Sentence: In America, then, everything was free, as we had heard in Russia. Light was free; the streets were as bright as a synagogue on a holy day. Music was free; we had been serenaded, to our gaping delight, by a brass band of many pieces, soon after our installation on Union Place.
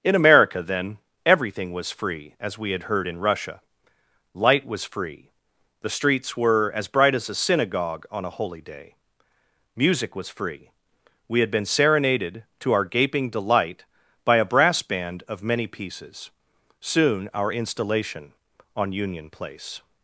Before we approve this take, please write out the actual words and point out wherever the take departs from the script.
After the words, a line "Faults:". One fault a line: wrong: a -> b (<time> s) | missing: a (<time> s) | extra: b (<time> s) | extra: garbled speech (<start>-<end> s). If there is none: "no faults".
In America, then, everything was free, as we had heard in Russia. Light was free; the streets were as bright as a synagogue on a holy day. Music was free; we had been serenaded, to our gaping delight, by a brass band of many pieces, soon our installation on Union Place.
Faults:
missing: after (17.3 s)